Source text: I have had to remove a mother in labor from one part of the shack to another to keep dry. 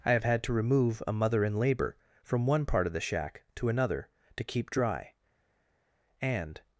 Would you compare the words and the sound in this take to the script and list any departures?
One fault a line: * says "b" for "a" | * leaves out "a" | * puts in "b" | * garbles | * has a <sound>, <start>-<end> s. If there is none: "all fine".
* puts in "And"